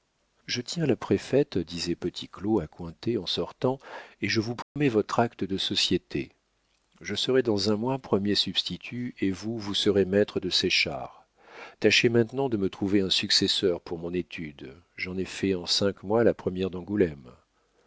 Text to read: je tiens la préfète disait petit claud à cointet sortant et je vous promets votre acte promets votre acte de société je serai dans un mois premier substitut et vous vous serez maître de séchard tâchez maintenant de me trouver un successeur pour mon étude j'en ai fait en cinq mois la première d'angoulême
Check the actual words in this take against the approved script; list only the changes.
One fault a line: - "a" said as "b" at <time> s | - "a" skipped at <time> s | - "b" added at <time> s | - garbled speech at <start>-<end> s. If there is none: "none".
- "en" added at 3.2 s
- "promets votre acte" skipped at 5.4 s